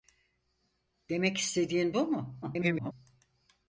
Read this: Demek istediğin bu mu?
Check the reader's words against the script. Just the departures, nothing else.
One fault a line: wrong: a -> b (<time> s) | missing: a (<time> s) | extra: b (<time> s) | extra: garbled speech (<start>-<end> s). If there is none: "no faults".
extra: garbled speech (2.4-2.9 s)